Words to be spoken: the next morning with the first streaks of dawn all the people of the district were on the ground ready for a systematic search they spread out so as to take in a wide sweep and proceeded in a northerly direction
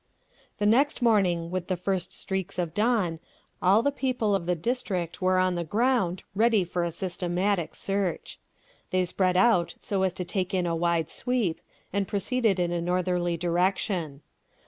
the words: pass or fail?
pass